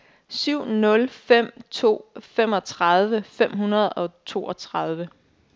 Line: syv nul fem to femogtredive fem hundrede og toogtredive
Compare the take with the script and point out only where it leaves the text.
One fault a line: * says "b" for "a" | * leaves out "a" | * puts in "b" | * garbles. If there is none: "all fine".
all fine